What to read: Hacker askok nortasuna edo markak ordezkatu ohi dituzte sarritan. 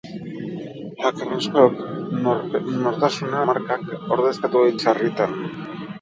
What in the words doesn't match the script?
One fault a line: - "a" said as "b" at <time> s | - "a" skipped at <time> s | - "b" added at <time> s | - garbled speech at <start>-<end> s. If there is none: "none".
- "edo" skipped at 3.4 s
- "dituzte" skipped at 4.7 s